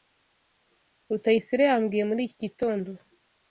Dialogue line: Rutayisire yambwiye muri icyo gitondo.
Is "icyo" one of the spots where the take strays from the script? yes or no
yes